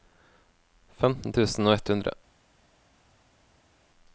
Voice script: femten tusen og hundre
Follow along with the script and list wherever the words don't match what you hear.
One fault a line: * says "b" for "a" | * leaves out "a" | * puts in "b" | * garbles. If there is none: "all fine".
* puts in "ett"